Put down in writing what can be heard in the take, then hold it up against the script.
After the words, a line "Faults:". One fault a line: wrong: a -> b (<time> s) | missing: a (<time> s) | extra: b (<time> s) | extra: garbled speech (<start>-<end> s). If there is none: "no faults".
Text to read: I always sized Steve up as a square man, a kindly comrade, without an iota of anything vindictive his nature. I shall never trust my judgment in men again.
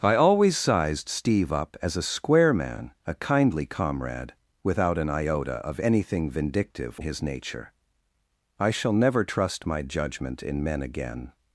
I always sized Steve up as a square man, a kindly comrade, without an iota of anything vindictive his nature. I shall never trust my judgment in men again.
Faults:
no faults